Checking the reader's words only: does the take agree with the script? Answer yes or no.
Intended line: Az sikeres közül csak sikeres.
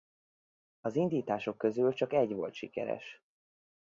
no